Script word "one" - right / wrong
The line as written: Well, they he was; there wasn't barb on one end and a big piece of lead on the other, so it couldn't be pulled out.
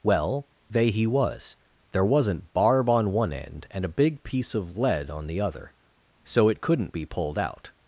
right